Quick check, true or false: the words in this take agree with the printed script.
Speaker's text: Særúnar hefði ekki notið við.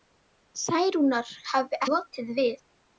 false